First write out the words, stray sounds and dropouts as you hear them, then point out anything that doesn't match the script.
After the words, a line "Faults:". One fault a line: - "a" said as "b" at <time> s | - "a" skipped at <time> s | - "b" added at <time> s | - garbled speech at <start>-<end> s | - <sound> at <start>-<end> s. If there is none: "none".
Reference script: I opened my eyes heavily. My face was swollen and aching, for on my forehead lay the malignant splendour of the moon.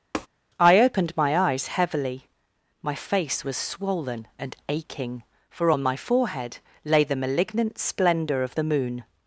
I opened my eyes heavily. My face was swollen and aching, for on my forehead lay the malignant splendour of the moon.
Faults:
- tap at 0.1-0.3 s